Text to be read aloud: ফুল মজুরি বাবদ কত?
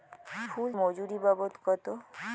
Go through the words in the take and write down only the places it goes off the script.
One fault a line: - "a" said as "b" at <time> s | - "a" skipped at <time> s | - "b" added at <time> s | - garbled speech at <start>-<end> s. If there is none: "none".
none